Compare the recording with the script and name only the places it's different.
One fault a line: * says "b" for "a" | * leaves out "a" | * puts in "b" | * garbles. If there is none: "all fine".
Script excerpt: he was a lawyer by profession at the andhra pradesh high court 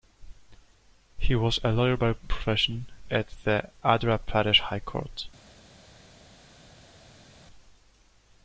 all fine